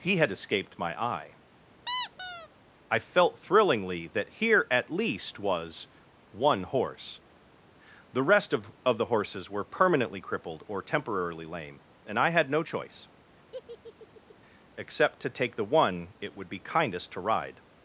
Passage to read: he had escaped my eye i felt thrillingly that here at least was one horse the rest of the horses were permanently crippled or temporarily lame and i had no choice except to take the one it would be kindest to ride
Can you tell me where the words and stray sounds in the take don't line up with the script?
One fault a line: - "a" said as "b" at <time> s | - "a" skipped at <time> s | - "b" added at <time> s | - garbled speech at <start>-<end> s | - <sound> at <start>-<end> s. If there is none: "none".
- squeak at 1.9-2.5 s
- "of" added at 8.9 s
- laugh at 13.5-14.4 s